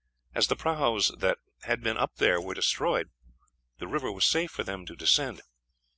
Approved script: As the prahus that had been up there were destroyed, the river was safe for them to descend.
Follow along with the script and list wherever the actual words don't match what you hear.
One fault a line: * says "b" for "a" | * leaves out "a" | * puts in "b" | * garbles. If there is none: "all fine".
all fine